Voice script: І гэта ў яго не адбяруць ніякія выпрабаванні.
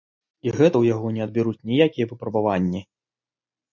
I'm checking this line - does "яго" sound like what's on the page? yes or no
yes